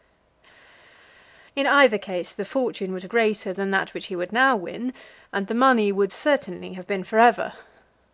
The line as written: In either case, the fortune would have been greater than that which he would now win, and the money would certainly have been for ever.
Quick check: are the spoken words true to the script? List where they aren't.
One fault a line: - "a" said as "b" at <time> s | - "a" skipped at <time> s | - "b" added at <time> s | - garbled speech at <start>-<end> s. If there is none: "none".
- "been" skipped at 3.1 s